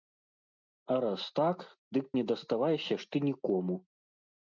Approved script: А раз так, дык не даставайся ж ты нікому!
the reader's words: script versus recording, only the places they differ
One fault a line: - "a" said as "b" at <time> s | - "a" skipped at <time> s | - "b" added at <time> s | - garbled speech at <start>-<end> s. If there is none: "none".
none